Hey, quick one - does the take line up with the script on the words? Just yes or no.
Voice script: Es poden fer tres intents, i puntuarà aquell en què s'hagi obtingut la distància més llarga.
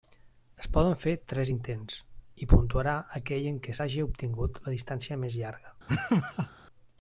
yes